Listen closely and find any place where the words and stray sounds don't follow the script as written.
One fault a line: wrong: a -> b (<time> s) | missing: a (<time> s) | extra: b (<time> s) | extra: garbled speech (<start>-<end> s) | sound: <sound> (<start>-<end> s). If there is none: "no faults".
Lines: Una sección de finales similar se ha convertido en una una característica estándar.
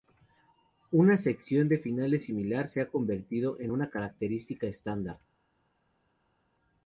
missing: una (3.9 s)